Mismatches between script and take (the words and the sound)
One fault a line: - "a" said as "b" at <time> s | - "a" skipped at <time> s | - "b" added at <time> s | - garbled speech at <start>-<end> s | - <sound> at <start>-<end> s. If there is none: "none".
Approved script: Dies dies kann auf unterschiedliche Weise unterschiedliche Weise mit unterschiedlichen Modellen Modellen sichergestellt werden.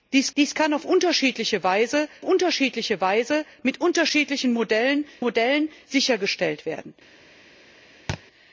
- thud at 8.1-8.2 s